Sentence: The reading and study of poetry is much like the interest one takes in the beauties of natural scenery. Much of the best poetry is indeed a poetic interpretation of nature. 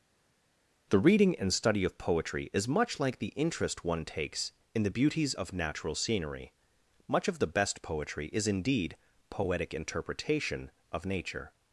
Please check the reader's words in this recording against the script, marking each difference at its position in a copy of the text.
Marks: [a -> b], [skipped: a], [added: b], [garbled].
The reading and study of poetry is much like the interest one takes in the beauties of natural scenery. Much of the best poetry is indeed [skipped: a] poetic interpretation of nature.